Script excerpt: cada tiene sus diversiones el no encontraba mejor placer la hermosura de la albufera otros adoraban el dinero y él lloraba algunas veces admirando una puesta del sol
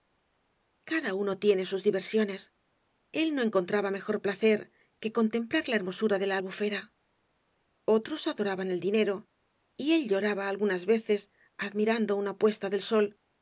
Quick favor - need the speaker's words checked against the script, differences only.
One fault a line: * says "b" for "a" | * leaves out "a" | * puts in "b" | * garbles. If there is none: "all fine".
* puts in "uno"
* puts in "que contemplar"